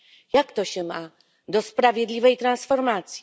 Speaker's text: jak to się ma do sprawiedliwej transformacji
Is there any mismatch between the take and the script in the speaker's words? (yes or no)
no